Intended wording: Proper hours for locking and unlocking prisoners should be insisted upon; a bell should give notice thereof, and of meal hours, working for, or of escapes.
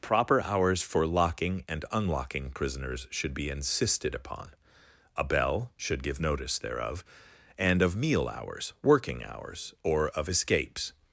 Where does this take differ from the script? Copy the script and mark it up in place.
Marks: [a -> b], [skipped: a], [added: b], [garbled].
Proper hours for locking and unlocking prisoners should be insisted upon; a bell should give notice thereof, and of meal hours, working [for, -> hours] or of escapes.